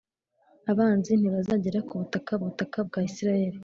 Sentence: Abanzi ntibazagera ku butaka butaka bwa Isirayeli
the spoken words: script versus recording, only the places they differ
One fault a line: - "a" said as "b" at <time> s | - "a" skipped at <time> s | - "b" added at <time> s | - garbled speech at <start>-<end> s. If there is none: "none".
none